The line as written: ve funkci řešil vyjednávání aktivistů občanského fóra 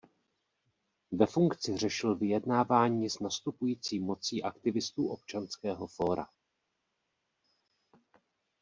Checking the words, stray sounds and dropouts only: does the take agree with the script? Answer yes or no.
no